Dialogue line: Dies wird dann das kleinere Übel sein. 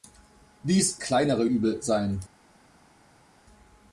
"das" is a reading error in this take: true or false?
true